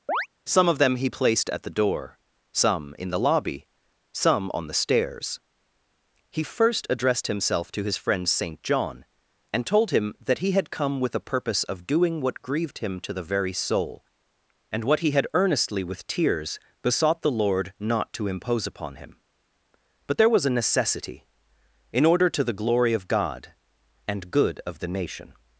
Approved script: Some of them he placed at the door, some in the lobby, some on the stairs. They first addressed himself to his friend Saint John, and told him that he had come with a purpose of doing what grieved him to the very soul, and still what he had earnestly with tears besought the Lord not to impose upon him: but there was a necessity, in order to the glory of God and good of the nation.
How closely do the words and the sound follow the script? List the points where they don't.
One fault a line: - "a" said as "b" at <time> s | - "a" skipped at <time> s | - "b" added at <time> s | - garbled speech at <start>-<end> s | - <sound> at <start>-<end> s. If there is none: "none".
- chirp at 0.1-0.3 s
- "They" said as "He" at 6.3 s
- "still" skipped at 14.8 s